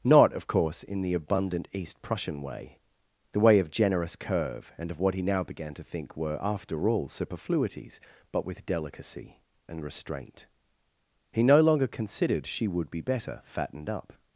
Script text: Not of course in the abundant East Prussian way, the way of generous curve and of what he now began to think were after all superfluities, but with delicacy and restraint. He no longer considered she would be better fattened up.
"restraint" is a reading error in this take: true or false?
false